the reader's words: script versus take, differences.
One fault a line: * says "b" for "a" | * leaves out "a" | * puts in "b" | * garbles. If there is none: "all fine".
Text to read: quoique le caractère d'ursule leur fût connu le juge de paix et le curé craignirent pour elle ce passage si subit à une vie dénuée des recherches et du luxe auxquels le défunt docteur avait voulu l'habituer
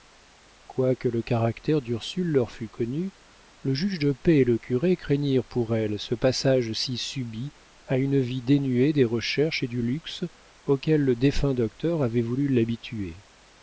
all fine